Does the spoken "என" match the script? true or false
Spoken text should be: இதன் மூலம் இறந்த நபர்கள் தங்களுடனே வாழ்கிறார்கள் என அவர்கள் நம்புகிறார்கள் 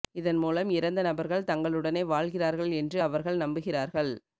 false